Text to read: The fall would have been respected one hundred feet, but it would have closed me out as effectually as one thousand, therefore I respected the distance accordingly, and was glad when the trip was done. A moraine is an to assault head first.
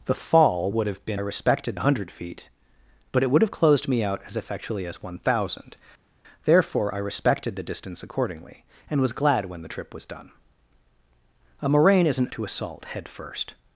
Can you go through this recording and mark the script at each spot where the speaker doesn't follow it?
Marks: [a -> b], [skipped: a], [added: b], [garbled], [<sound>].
The fall would have been respected one hundred feet, but it would have closed me out as effectually as one thousand, therefore I respected the distance accordingly, and was glad when the trip was done. A moraine is an to assault head first.